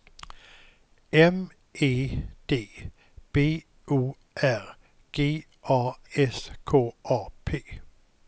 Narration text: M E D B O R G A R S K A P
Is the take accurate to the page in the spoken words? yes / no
no